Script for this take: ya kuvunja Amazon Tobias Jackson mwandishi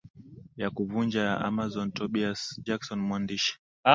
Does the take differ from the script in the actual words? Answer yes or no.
yes